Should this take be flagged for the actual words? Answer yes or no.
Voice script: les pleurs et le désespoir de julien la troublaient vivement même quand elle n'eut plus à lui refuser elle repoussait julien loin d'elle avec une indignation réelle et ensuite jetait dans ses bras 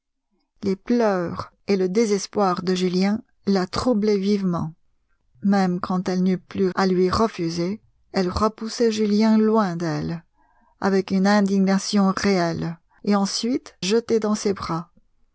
no